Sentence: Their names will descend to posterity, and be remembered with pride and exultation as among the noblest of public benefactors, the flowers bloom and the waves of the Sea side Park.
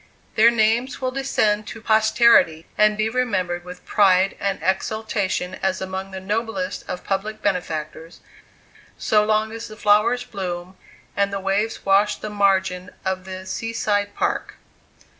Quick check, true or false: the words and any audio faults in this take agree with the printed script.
false